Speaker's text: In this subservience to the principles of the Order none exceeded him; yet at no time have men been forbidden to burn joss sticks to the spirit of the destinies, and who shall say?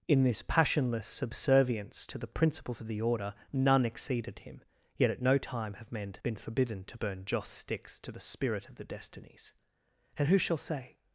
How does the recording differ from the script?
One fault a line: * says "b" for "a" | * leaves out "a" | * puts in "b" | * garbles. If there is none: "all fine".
* puts in "passionless"